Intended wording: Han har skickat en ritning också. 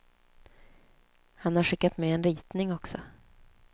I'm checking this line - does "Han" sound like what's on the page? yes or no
yes